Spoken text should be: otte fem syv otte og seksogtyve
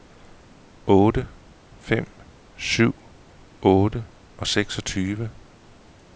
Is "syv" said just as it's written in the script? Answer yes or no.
yes